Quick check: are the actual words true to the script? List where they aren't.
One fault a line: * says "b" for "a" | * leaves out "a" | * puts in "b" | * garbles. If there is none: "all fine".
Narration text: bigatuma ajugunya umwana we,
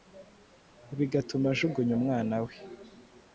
all fine